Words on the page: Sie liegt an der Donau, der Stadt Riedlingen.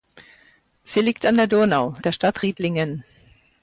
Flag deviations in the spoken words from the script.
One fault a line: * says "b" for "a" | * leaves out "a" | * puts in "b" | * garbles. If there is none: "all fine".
all fine